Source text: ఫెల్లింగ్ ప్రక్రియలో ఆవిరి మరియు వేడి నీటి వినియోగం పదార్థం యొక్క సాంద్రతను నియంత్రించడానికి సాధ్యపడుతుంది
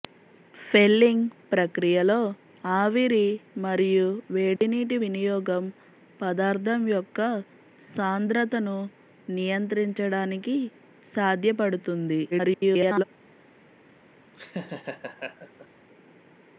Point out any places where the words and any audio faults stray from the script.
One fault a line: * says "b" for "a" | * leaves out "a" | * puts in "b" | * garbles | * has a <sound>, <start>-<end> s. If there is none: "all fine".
* has a dropout, 4.6-4.6 s
* garbles
* has a laugh, 14.3-15.7 s